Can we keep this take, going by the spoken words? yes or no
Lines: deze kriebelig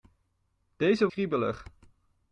yes